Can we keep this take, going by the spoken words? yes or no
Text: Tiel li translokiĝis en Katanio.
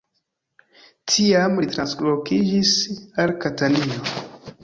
no